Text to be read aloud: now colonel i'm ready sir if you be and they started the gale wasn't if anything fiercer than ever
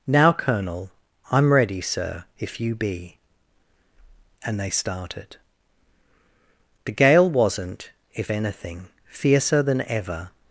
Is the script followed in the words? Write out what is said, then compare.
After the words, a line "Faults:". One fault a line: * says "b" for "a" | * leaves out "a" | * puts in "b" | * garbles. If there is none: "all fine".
now colonel i'm ready sir if you be and they started the gale wasn't if anything fiercer than ever
Faults:
all fine